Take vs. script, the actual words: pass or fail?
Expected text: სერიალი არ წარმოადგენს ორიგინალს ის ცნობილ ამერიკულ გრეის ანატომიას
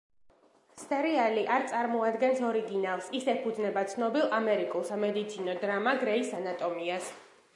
fail